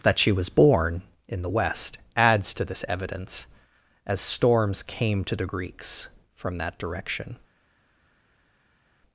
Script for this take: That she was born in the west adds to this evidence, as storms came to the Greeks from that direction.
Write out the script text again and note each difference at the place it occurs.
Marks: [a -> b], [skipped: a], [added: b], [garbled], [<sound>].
That she was born in the west adds to this evidence, as storms came to the Greeks from that direction.